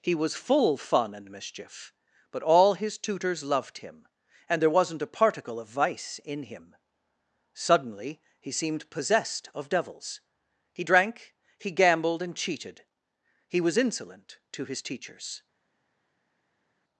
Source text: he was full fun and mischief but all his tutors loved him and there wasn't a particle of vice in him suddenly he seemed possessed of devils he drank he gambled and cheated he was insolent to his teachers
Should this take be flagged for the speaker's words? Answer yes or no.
no